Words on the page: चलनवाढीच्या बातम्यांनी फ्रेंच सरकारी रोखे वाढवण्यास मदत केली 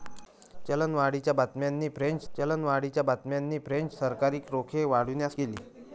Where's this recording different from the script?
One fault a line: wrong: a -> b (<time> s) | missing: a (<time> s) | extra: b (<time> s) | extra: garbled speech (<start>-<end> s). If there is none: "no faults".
extra: चलनवाढीच्या बातम्यांनी फ्रेंच (2.3 s)
missing: मदत (5.4 s)